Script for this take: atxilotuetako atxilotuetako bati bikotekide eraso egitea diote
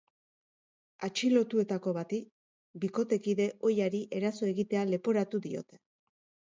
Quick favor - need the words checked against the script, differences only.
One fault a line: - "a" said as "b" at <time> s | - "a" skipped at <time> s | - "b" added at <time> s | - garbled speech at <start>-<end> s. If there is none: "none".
- "atxilotuetako" skipped at 1.9 s
- "ohiari" added at 3.7 s
- "leporatu" added at 5.0 s